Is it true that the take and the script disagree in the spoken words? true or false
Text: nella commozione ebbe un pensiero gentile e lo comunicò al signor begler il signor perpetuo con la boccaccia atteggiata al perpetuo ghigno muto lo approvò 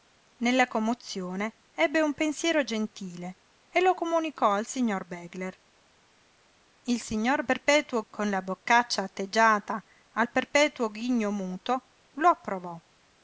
false